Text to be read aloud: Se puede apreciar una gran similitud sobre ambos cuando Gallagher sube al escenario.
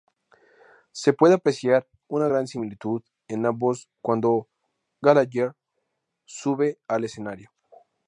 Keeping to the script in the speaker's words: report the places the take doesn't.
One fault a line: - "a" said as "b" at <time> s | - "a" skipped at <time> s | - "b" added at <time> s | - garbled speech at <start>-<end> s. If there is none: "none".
- "sobre" said as "en" at 3.3 s